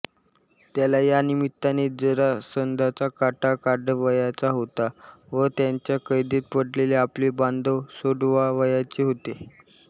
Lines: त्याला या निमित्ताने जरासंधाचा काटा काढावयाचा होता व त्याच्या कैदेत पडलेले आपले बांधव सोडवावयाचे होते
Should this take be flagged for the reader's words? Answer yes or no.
no